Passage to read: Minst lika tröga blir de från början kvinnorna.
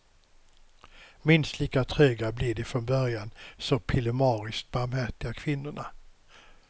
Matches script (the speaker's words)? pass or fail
fail